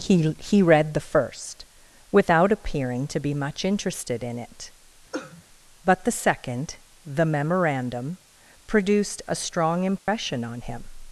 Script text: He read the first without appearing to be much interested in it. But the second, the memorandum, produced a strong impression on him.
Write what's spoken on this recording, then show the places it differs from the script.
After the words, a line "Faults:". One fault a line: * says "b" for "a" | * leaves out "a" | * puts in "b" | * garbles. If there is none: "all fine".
He he read the first without appearing to be much interested in it. But the second, the memorandum, produced a strong impression on him.
Faults:
* puts in "he"